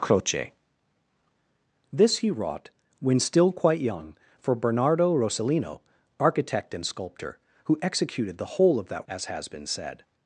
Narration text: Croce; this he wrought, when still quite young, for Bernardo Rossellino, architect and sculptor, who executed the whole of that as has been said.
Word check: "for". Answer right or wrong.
right